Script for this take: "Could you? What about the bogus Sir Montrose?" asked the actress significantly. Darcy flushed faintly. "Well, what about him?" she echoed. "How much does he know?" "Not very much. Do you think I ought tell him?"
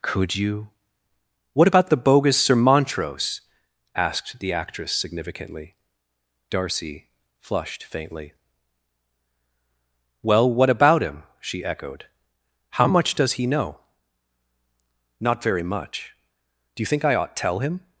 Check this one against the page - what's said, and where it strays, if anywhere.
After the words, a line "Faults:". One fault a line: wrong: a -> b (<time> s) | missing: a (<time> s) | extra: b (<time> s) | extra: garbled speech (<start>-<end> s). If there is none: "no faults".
"Could you? What about the bogus Sir Montrose?" asked the actress significantly. Darcy flushed faintly. "Well, what about him?" she echoed. "How much does he know?" "Not very much. Do you think I ought tell him?"
Faults:
no faults